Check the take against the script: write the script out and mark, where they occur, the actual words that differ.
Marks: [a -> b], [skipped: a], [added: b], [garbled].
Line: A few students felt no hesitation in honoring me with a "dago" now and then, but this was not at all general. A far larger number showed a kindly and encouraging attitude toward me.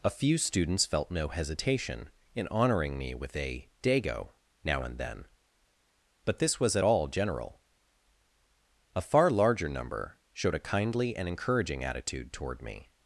A few students felt no hesitation in honoring me with a "dago" now and then, but this was [skipped: not] at all general. A far larger number showed a kindly and encouraging attitude toward me.